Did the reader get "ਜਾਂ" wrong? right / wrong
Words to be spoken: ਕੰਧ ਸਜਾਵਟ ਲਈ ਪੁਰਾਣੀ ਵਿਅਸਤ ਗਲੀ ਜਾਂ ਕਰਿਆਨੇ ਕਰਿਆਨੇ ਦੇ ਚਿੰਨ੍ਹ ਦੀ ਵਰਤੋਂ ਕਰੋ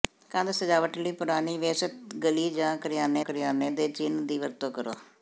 right